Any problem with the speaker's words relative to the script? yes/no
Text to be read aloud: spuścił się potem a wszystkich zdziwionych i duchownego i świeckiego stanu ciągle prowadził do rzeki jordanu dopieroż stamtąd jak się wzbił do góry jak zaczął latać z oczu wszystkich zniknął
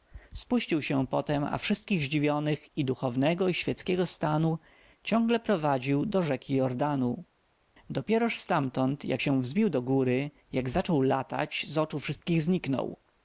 no